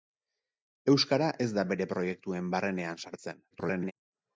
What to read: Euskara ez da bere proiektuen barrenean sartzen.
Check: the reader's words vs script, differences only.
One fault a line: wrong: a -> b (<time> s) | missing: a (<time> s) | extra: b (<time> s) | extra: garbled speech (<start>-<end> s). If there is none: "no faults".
extra: garbled speech (3.5-3.9 s)